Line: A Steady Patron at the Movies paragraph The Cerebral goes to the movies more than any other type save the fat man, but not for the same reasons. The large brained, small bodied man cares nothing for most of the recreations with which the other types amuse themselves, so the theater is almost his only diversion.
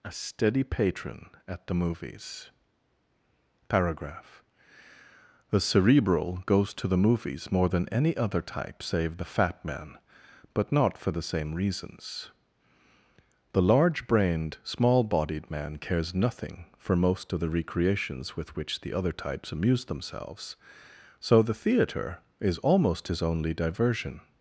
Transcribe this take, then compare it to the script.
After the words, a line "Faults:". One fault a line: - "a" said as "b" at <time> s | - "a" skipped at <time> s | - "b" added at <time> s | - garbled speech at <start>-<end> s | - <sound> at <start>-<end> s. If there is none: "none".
A Steady Patron at the Movies paragraph The Cerebral goes to the movies more than any other type save the fat man, but not for the same reasons. The large brained, small bodied man cares nothing for most of the recreations with which the other types amuse themselves, so the theater is almost his only diversion.
Faults:
none